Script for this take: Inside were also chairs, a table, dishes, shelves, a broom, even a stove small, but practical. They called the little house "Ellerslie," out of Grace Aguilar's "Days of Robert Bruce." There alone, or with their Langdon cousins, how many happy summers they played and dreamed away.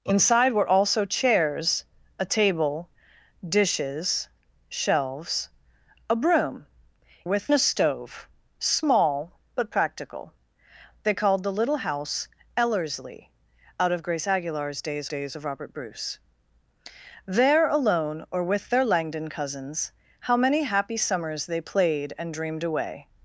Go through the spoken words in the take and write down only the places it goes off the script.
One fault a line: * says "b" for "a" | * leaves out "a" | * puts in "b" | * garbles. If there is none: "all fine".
* says "with" for "even"
* puts in "days"